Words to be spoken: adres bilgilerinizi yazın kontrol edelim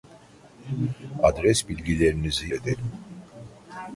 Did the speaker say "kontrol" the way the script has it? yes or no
no